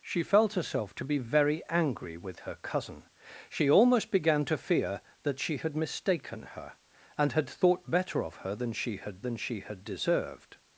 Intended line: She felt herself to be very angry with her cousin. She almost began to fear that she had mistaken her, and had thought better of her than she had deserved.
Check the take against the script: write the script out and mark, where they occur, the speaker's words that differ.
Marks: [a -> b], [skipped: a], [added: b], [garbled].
She felt herself to be very angry with her cousin. She almost began to fear that she had mistaken her, and had thought better of her than she had [added: than she had] deserved.